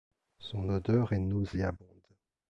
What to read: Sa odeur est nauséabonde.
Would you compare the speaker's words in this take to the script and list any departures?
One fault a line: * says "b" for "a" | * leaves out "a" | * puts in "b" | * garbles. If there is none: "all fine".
* says "Son" for "Sa"